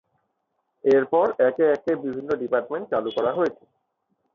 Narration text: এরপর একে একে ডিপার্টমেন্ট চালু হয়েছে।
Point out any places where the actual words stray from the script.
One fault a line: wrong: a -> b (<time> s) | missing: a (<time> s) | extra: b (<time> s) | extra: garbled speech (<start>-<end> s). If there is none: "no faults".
extra: বিভিন্ন (2.0 s)
extra: করা (3.2 s)